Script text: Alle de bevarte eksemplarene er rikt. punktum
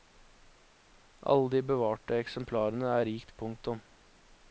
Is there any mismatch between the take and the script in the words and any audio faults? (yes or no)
no